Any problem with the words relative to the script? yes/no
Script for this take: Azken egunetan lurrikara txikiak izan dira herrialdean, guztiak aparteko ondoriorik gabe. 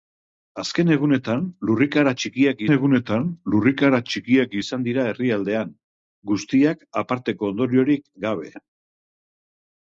yes